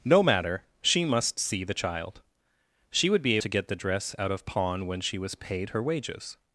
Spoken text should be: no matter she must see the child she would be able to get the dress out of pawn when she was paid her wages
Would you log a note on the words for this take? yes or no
yes